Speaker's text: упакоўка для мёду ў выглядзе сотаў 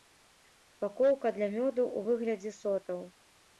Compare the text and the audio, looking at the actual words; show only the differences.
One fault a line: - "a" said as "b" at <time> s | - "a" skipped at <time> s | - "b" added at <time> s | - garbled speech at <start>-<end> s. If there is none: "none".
none